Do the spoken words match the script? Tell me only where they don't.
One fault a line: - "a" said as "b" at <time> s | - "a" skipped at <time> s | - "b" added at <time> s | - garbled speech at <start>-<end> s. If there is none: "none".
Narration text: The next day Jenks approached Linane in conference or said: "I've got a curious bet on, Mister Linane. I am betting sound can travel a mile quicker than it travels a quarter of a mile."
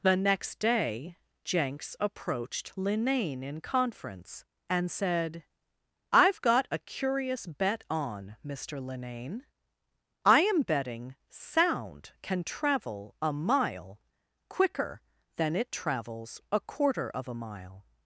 - "or" said as "and" at 4.7 s